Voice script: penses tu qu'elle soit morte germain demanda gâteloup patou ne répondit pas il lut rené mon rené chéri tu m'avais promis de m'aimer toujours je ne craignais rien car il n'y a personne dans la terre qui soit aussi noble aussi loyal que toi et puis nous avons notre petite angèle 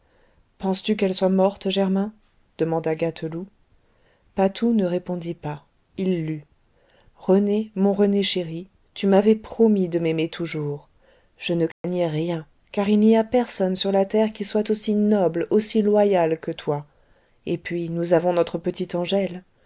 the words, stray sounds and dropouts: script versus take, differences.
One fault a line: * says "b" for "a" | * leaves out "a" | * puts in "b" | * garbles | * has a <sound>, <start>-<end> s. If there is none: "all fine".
* has a dropout, 11.7-11.8 s
* says "sur" for "dans"